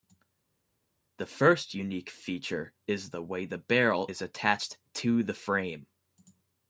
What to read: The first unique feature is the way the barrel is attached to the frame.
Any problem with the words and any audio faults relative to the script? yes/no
no